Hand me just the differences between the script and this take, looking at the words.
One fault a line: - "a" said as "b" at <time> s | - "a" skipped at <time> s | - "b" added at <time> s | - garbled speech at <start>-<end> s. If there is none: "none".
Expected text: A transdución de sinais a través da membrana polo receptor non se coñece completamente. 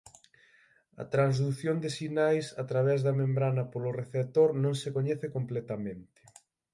none